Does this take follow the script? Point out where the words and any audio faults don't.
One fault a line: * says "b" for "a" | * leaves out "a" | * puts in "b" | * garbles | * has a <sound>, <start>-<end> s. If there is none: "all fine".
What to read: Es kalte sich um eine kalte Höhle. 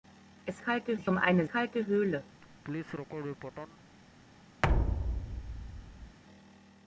* has a laugh, 2.4-3.8 s
* has a thud, 4.6-6.2 s